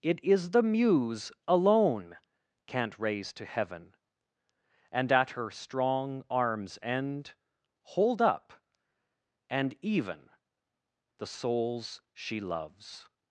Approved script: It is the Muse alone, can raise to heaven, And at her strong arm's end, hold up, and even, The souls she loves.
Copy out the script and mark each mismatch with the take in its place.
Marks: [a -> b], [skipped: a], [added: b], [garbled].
It is the Muse alone, [can -> can't] raise to heaven, And at her strong arm's end, hold up, and even, The souls she loves.